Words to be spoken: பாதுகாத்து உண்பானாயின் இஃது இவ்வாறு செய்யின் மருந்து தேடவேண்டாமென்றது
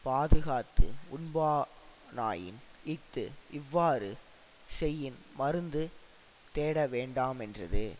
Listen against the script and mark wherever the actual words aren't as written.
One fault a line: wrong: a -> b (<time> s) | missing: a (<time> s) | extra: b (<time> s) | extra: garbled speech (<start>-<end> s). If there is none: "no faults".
no faults